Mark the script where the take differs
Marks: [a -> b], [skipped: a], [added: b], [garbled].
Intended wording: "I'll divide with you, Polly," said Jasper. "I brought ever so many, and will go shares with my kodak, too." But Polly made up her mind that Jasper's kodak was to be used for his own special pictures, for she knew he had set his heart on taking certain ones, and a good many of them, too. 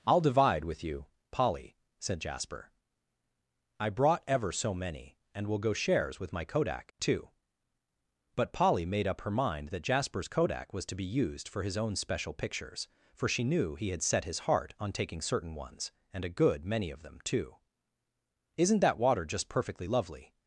"I'll divide with you, Polly," said Jasper. "I brought ever so many, and will go shares with my kodak, too." But Polly made up her mind that Jasper's kodak was to be used for his own special pictures, for she knew he had set his heart on taking certain ones, and a good many of them, too. [added: Isn't that water just perfectly lovely]